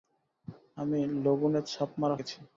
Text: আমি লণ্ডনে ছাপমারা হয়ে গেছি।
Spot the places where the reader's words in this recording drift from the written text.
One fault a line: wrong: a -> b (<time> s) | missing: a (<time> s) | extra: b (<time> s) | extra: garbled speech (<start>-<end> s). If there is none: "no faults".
missing: হয়ে (2.1 s)